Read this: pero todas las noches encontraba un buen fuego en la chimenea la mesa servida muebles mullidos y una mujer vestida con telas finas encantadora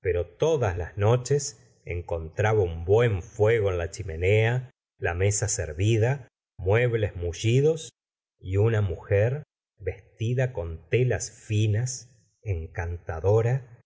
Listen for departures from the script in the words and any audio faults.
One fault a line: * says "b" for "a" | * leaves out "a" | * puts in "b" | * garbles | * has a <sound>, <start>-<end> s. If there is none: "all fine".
all fine